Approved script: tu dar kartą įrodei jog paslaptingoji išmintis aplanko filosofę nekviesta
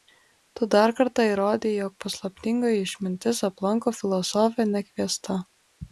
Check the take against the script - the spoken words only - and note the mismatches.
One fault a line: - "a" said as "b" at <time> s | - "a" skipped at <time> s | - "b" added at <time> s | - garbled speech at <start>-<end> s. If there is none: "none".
none